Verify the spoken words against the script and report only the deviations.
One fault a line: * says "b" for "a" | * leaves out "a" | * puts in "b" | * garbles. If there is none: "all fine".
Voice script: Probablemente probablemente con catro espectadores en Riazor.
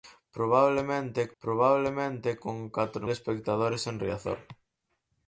all fine